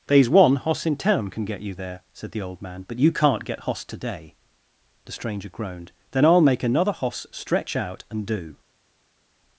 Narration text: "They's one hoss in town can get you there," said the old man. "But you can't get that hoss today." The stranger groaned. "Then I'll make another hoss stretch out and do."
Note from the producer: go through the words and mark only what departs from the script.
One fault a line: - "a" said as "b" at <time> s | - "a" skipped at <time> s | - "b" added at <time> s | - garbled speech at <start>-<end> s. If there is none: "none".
- "that" skipped at 3.6 s